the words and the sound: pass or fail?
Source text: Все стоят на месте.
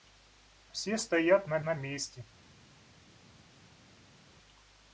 fail